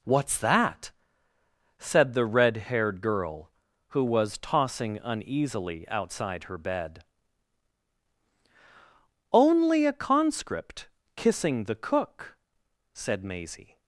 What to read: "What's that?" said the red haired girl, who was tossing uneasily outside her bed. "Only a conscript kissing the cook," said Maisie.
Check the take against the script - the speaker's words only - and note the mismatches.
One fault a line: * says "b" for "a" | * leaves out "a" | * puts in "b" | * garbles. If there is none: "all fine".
all fine